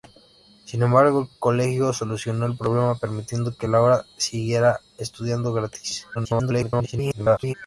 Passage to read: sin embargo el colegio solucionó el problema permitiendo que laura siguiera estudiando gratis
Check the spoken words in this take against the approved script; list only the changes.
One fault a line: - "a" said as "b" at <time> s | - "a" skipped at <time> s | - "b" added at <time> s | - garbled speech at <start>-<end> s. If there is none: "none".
- garbled speech at 6.1-7.5 s